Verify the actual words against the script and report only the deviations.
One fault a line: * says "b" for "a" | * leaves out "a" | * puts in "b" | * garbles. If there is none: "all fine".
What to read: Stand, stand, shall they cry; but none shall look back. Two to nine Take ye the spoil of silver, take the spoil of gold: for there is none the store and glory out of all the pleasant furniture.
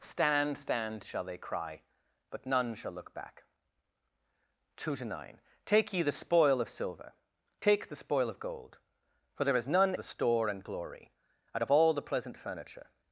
all fine